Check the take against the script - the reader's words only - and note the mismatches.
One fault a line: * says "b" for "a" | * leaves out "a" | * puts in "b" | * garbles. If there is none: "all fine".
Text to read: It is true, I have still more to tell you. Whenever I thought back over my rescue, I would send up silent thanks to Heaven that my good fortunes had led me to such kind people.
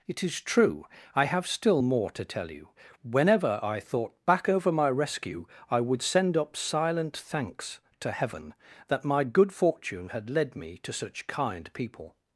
* says "fortune" for "fortunes"